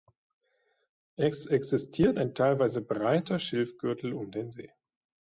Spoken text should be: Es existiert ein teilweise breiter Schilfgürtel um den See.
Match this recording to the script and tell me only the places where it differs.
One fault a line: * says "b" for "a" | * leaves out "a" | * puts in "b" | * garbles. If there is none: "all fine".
all fine